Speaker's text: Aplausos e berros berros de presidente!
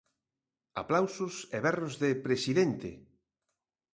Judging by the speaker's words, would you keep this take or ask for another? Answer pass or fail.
fail